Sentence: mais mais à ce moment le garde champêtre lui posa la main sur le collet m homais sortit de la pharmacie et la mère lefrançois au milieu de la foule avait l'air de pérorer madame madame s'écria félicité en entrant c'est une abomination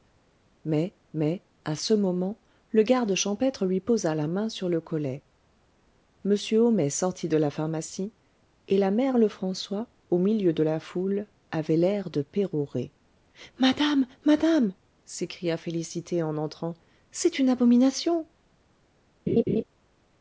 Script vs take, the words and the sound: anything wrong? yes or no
yes